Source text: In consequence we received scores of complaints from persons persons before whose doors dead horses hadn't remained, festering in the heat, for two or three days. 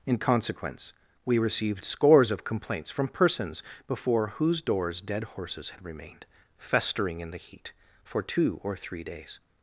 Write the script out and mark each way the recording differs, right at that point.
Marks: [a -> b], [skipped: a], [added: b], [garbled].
In consequence we received scores of complaints from persons [skipped: persons] before whose doors dead horses [hadn't -> had] remained, festering in the heat, for two or three days.